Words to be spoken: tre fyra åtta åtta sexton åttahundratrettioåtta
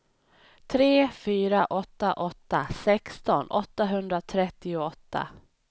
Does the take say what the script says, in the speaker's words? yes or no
yes